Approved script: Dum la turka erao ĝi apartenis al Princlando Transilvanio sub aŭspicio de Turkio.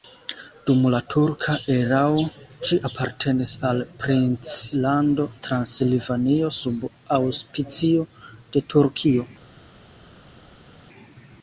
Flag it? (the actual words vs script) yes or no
no